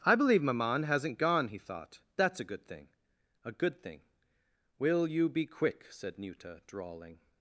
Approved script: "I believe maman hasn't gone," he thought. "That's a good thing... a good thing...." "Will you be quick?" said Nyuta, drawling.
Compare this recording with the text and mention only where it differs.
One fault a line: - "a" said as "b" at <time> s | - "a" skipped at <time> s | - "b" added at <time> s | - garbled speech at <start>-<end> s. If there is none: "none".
none